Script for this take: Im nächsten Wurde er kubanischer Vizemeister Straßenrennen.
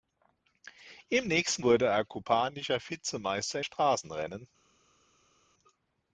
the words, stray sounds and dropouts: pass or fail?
pass